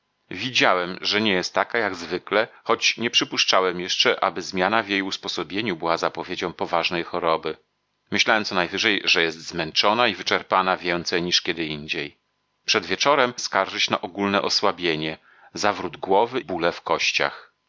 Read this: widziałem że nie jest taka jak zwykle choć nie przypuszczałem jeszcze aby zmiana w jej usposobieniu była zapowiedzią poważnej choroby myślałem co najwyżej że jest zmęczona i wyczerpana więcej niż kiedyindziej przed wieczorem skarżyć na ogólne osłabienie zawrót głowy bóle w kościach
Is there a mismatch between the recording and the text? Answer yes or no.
no